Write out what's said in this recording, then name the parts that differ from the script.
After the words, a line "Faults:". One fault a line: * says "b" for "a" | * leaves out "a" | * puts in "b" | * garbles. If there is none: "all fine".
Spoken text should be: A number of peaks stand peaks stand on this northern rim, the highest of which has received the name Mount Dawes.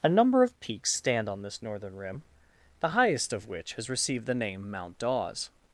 A number of peaks stand on this northern rim, the highest of which has received the name Mount Dawes.
Faults:
* leaves out "peaks stand"